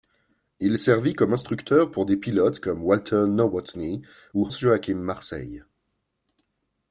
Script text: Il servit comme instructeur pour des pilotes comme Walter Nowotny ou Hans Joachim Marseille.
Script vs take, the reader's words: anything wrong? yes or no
yes